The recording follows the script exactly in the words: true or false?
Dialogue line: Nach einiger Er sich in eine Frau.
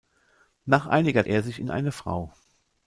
true